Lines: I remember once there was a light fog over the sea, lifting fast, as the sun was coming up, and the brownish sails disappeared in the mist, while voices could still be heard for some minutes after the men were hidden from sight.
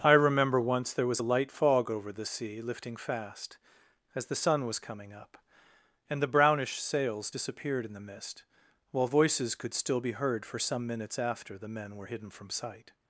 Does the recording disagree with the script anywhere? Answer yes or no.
no